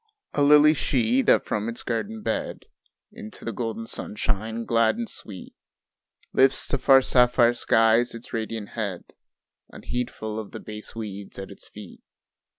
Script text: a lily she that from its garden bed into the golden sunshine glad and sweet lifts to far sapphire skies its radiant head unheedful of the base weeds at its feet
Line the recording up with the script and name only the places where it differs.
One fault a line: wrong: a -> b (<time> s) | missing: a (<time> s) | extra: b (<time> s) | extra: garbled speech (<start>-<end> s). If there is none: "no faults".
no faults